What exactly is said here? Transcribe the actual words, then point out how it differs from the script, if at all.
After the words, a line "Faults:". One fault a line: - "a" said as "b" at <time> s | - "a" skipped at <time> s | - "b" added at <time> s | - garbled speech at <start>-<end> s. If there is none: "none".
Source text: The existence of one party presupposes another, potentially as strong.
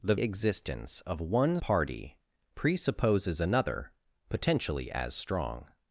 The existence of one party presupposes another, potentially as strong.
Faults:
none